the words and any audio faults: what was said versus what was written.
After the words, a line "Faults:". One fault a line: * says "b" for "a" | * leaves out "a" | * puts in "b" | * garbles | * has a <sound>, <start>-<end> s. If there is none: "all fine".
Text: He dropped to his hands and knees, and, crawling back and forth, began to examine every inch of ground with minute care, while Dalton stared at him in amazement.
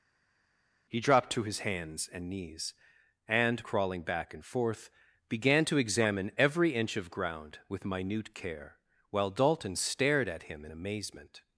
He dropped to his hands and knees, and, crawling back and forth, began to examine every inch of ground with minute care, while Dalton stared at him in amazement.
Faults:
all fine